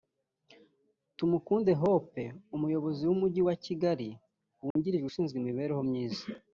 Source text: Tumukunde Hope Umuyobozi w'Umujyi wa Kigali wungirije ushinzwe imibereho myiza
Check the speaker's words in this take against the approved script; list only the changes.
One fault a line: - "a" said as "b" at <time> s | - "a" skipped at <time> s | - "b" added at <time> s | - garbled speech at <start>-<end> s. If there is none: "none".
none